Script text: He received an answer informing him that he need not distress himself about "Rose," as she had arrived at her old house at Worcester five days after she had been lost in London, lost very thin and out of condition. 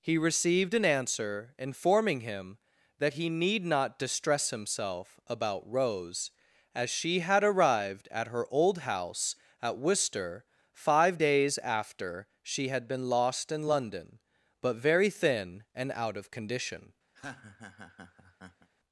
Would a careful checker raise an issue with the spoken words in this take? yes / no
yes